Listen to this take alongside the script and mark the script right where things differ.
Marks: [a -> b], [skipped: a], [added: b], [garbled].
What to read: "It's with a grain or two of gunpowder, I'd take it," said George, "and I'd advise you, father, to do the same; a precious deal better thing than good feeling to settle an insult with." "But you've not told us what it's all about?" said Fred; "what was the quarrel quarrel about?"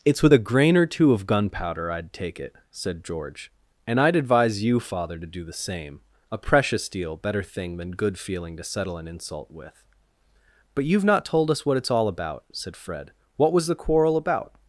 "It's with a grain or two of gunpowder, I'd take it," said George, "and I'd advise you, father, to do the same; a precious deal better thing than good feeling to settle an insult with." "But you've not told us what it's all about?" said Fred; "what was the quarrel [skipped: quarrel] about?"